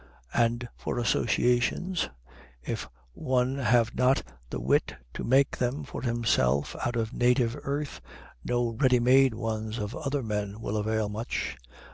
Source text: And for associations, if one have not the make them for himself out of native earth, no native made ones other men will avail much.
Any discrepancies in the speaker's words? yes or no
yes